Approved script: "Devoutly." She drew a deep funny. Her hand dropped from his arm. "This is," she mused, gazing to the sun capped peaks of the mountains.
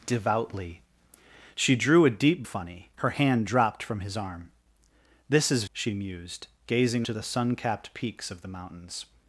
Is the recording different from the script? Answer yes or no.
no